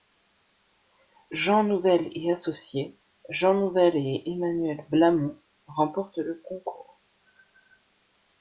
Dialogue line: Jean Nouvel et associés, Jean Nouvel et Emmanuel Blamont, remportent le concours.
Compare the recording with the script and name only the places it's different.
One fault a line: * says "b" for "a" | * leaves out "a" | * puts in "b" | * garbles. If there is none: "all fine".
all fine